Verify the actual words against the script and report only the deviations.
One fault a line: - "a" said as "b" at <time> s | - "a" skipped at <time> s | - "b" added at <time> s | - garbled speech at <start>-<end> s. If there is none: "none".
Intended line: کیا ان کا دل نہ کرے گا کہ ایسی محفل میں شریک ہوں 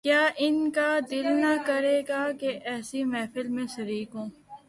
none